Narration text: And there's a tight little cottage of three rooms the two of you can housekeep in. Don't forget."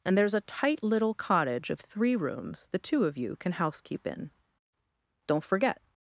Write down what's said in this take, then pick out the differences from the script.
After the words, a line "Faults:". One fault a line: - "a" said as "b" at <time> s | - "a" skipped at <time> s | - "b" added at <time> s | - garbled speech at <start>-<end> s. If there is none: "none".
And there's a tight little cottage of three rooms the two of you can housekeep in. Don't forget."
Faults:
none